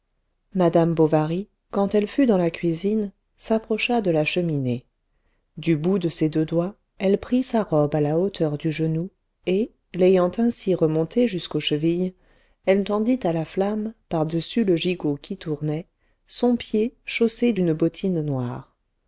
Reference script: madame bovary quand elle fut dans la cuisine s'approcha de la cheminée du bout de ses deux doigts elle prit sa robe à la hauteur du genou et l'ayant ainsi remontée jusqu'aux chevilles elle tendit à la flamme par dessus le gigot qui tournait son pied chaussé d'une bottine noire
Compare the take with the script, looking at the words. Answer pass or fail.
pass